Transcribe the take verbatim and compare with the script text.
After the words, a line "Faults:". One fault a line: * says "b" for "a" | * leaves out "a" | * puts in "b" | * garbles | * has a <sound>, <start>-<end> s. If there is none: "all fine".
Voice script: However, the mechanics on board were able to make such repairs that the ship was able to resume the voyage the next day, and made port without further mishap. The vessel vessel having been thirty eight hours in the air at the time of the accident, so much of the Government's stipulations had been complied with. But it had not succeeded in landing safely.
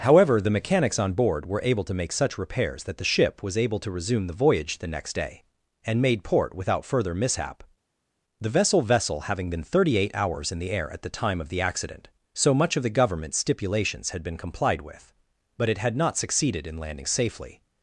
However, the mechanics on board were able to make such repairs that the ship was able to resume the voyage the next day, and made port without further mishap. The vessel vessel having been thirty eight hours in the air at the time of the accident, so much of the Government's stipulations had been complied with. But it had not succeeded in landing safely.
Faults:
all fine